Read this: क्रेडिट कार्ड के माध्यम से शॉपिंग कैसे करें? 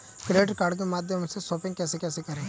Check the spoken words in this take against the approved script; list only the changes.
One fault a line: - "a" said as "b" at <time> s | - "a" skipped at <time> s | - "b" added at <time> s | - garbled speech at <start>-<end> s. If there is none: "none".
- "कैसे" added at 2.0 s